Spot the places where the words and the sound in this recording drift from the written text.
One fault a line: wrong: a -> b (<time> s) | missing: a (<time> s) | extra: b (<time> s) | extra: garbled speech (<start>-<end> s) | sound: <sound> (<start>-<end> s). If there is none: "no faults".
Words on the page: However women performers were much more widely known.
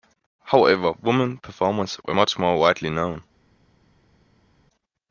no faults